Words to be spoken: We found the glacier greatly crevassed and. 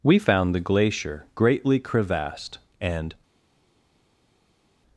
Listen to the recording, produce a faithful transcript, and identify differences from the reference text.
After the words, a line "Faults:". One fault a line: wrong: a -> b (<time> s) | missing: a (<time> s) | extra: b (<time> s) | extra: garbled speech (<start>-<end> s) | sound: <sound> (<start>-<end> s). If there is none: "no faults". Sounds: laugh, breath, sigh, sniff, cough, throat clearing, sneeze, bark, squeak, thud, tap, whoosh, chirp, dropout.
We found the glacier greatly crevassed and.
Faults:
no faults